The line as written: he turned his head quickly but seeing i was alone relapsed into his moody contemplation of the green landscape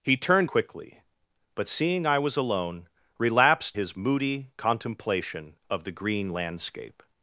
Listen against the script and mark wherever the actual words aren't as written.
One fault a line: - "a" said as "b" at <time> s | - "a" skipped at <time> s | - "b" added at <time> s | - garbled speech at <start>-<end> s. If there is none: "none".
- "his head" skipped at 0.5 s
- "into" skipped at 3.8 s